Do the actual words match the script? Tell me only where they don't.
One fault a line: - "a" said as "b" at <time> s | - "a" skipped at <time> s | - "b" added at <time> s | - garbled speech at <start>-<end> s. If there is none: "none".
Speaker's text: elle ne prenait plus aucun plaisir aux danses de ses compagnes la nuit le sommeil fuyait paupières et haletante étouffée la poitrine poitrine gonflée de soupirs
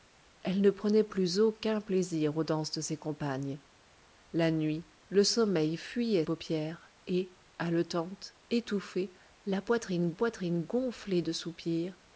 none